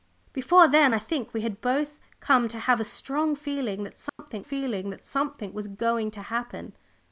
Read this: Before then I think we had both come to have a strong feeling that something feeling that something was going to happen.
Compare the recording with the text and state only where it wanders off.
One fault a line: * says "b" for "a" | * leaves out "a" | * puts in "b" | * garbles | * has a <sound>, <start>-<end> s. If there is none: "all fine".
* has a dropout, 4.1-4.2 s